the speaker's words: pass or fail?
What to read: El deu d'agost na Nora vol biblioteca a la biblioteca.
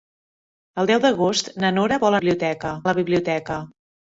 pass